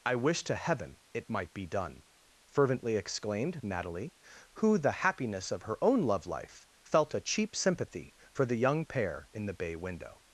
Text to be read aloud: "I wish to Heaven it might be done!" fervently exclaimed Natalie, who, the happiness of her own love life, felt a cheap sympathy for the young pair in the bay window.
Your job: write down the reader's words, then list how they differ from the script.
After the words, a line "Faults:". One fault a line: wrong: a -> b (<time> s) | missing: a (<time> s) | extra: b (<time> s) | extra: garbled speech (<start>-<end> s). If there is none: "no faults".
"I wish to Heaven it might be done!" fervently exclaimed Natalie, who, the happiness of her own love life, felt a cheap sympathy for the young pair in the bay window.
Faults:
no faults